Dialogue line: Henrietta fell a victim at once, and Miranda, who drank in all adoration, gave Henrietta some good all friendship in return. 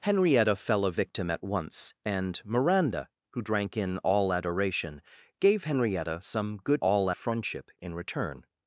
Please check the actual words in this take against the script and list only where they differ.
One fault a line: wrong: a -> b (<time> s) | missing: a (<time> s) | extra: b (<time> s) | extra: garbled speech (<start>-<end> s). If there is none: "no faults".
no faults